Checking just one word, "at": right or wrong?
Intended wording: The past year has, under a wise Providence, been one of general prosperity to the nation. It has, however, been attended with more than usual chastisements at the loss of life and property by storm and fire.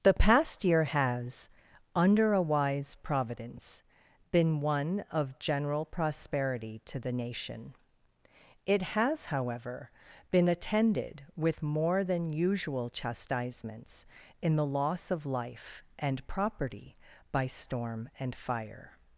wrong